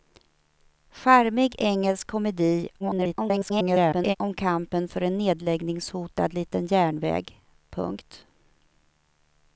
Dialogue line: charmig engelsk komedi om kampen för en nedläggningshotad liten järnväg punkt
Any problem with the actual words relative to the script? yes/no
yes